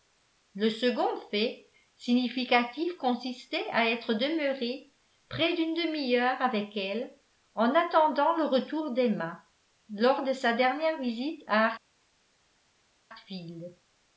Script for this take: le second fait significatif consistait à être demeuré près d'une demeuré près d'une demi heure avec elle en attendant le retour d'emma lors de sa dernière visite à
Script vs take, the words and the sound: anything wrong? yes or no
yes